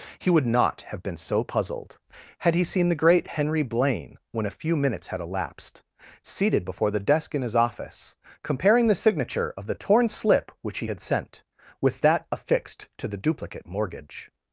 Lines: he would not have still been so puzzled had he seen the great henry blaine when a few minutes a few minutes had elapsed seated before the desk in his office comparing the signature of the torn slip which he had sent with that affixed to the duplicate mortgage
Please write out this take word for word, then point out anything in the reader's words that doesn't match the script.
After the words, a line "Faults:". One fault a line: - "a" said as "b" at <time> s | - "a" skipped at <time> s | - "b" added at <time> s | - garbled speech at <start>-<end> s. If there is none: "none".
he would not have been so puzzled had he seen the great henry blaine when a few minutes had elapsed seated before the desk in his office comparing the signature of the torn slip which he had sent with that affixed to the duplicate mortgage
Faults:
- "still" skipped at 1.0 s
- "a few minutes" skipped at 5.1 s